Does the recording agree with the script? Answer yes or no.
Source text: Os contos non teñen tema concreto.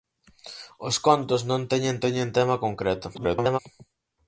no